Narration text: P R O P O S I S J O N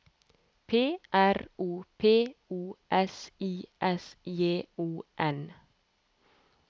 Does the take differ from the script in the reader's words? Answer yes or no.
no